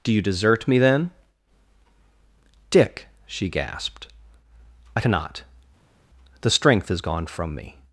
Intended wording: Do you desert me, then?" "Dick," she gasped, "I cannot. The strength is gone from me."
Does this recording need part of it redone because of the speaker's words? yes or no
no